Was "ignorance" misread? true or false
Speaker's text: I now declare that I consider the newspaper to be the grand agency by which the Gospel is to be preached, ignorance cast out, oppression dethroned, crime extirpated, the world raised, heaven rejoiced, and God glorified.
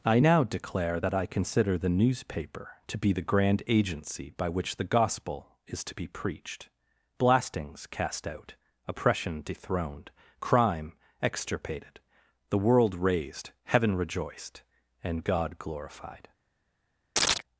true